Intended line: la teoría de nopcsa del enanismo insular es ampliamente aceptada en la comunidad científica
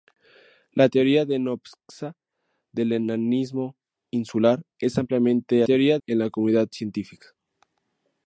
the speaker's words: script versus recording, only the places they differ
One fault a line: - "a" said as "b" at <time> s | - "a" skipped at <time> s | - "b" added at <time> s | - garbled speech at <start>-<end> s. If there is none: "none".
- "aceptada" said as "teoría" at 5.6 s